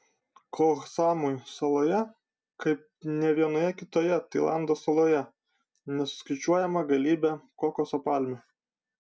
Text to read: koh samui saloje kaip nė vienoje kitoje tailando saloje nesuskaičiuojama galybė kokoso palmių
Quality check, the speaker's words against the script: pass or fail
pass